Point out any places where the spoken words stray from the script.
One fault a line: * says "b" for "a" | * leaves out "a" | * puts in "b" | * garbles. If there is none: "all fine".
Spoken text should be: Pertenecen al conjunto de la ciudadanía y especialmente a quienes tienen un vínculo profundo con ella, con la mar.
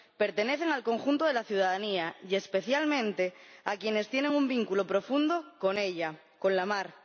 all fine